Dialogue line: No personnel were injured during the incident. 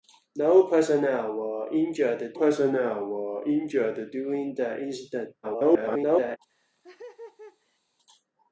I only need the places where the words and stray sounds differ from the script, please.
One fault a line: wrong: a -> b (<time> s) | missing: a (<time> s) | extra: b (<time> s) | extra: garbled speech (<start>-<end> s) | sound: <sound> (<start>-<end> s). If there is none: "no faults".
extra: personnel were injured (2.3 s)
extra: garbled speech (5.4-6.4 s)
sound: laugh (6.5-7.8 s)